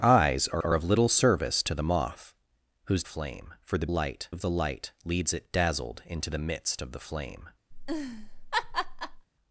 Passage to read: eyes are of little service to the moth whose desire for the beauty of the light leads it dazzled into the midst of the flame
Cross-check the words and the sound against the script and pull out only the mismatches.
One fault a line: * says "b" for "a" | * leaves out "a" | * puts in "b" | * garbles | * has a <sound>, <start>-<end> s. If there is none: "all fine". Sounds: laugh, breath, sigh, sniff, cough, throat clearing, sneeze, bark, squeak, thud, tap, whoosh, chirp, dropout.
* puts in "are"
* says "flame" for "desire"
* says "light" for "beauty"
* has a laugh, 7.7-9.3 s